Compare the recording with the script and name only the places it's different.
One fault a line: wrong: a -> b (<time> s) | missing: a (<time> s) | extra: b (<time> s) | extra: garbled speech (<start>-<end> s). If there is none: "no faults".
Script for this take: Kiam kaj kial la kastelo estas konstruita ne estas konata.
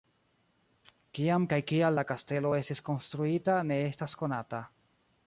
wrong: estas -> estis (2.6 s)